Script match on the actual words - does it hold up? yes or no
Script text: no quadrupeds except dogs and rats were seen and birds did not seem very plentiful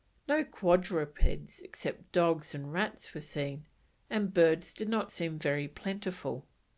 yes